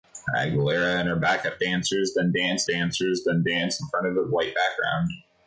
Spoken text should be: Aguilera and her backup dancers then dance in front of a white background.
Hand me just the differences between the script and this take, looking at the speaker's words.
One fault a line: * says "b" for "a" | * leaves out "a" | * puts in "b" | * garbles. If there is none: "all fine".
* puts in "dancers then dance"